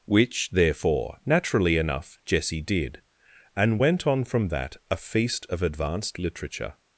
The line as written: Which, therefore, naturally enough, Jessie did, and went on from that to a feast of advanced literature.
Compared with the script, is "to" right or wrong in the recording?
wrong